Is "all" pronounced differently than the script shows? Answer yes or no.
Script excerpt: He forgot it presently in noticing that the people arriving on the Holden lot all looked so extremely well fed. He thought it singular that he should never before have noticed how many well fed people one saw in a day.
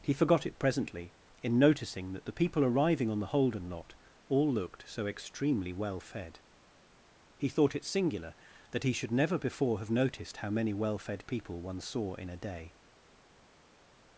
no